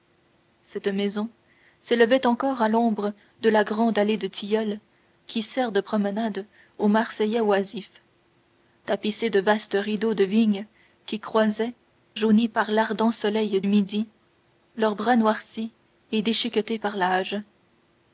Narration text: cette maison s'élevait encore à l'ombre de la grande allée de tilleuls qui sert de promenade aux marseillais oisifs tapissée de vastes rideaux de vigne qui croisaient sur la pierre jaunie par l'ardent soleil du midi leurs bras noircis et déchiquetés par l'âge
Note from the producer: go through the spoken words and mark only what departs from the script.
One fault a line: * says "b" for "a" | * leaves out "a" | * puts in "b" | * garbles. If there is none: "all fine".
* leaves out "sur la pierre"
* leaves out "du"